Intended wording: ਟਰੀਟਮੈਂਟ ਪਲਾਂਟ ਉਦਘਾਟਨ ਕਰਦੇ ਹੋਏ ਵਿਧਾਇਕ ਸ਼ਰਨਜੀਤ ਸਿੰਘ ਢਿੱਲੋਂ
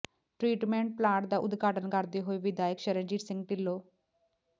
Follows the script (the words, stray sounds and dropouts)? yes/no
no